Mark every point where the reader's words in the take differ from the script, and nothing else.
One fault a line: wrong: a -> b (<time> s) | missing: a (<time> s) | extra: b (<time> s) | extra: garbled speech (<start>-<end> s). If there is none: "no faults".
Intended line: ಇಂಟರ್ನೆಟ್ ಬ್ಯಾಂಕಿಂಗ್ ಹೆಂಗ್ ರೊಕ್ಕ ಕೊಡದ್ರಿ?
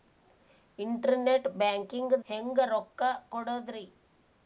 no faults